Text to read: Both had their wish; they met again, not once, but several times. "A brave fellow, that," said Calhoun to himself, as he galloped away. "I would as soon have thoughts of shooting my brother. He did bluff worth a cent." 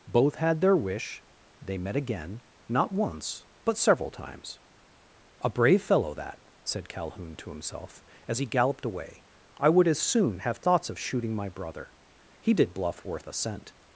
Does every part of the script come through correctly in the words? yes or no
yes